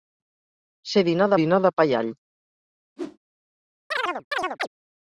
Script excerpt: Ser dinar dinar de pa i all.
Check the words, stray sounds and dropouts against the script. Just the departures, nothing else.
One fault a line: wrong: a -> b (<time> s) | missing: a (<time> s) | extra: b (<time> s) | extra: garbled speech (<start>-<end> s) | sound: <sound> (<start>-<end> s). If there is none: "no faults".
sound: whoosh (3.0-3.2 s)
sound: chirp (3.9-4.7 s)